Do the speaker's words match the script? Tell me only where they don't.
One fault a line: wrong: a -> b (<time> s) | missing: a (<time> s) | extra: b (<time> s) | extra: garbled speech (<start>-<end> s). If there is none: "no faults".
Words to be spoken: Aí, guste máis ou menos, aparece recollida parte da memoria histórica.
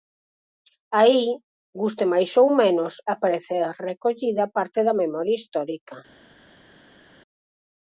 no faults